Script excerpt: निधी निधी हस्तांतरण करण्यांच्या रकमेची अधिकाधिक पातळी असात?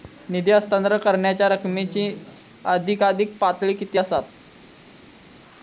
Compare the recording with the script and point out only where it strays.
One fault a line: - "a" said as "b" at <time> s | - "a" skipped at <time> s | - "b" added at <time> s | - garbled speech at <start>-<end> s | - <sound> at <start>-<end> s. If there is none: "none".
- "निधी" skipped at 0.5 s
- "किती" added at 3.7 s